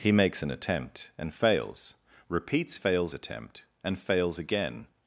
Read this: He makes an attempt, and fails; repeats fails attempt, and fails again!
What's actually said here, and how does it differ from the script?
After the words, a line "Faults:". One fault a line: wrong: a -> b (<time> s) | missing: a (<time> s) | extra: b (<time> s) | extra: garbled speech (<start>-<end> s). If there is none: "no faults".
He makes an attempt, and fails; repeats fails attempt, and fails again!
Faults:
no faults